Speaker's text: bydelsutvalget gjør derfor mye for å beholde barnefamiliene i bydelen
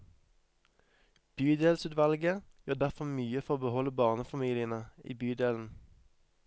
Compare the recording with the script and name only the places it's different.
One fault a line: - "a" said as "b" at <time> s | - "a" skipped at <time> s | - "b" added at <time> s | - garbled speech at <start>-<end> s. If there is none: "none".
none